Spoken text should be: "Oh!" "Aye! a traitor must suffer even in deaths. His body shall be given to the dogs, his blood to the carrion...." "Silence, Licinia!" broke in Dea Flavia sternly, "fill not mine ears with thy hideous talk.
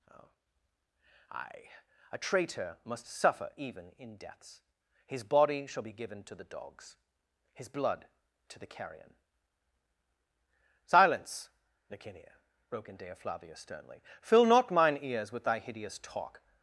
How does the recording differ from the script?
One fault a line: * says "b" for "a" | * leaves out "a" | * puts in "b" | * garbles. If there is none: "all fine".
all fine